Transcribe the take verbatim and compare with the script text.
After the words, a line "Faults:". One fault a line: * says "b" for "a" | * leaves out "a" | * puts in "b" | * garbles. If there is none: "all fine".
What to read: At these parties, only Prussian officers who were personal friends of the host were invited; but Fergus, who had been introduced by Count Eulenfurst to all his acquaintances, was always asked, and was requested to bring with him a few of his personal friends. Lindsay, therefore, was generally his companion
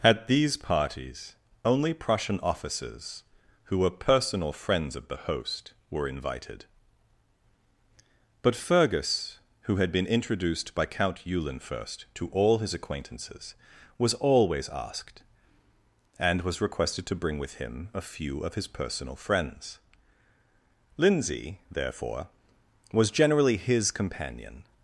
At these parties, only Prussian officers who were personal friends of the host were invited; but Fergus, who had been introduced by Count Eulenfurst to all his acquaintances, was always asked, and was requested to bring with him a few of his personal friends. Lindsay, therefore, was generally his companion
Faults:
all fine